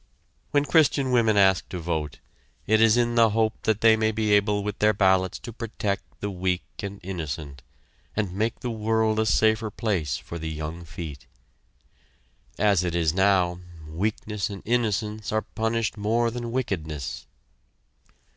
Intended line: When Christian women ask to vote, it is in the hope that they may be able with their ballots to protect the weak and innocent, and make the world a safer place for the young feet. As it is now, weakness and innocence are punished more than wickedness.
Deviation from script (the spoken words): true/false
false